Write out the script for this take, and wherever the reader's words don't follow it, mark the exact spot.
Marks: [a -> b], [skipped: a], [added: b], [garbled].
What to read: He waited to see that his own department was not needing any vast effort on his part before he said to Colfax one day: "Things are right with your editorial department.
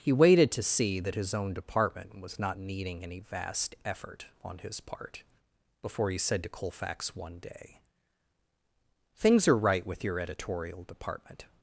He waited to see that his own department was not needing any vast effort on his part before he said to Colfax one day: "Things are right with your editorial department.